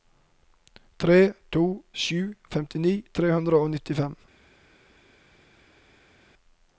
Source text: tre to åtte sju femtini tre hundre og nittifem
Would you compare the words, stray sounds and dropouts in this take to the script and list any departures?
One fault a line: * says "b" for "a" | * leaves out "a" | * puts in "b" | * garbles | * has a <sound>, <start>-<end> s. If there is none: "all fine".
* leaves out "åtte"